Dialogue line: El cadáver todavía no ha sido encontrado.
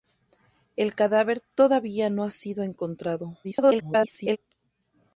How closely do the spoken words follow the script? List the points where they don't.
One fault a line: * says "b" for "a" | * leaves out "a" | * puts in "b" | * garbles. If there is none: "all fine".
* garbles